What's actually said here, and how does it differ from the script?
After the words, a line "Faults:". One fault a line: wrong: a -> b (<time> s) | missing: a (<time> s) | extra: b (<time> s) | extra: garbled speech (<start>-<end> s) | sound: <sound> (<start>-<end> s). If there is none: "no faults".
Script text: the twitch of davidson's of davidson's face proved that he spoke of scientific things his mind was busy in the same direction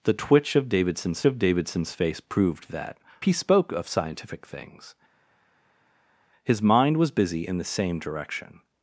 the twitch of davidson's of davidson's face proved that he spoke of scientific things his mind was busy in the same direction
Faults:
no faults